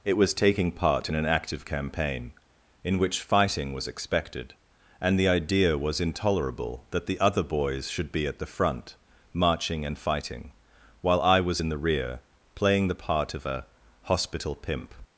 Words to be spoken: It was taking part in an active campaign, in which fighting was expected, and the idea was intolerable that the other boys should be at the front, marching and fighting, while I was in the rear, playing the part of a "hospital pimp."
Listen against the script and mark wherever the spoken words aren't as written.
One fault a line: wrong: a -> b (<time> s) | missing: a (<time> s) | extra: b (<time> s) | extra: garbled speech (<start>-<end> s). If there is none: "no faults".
no faults